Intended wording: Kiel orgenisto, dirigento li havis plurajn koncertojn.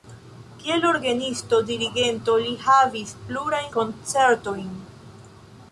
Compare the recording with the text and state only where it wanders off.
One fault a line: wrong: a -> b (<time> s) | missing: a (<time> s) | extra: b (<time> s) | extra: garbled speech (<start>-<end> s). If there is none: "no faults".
no faults